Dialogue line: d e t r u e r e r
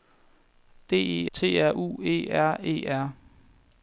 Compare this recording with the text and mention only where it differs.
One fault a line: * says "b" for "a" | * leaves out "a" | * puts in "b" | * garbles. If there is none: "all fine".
all fine